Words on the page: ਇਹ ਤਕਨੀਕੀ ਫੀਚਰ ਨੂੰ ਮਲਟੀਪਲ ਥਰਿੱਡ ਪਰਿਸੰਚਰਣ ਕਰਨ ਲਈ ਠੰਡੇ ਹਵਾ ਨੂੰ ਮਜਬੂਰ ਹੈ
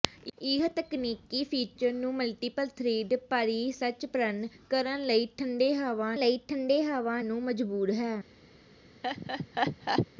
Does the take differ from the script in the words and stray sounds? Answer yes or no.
yes